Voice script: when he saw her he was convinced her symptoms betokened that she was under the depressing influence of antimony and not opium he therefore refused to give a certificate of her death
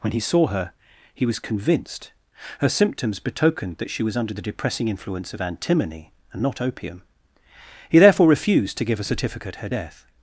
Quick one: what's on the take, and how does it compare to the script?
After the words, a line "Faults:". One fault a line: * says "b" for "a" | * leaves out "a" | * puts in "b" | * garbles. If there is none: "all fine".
when he saw her he was convinced her symptoms betokened that she was under the depressing influence of antimony and not opium he therefore refused to give a certificate her death
Faults:
* leaves out "of"